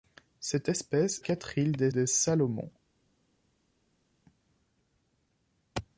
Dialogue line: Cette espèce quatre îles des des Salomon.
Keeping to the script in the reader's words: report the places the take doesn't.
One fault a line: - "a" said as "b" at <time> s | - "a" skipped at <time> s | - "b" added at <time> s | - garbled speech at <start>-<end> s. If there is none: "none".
none